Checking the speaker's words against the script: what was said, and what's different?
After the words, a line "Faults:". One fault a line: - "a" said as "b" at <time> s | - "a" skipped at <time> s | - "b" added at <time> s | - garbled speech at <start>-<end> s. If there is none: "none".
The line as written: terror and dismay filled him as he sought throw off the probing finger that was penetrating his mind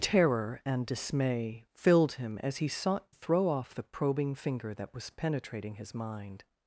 terror and dismay filled him as he sought throw off the probing finger that was penetrating his mind
Faults:
none